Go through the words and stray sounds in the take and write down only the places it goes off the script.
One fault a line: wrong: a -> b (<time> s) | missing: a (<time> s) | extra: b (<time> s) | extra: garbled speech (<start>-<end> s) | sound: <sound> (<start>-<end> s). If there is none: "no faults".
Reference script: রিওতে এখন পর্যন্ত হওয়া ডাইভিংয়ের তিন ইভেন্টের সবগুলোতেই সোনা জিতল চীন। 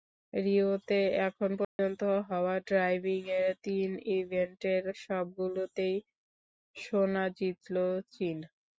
sound: dropout (1.6-1.8 s)